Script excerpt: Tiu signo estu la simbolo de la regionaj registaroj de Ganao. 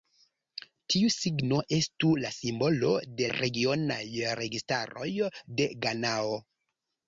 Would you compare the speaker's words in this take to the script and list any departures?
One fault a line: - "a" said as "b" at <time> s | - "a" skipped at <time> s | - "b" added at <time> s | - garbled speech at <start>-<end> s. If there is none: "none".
- "la" skipped at 3.3 s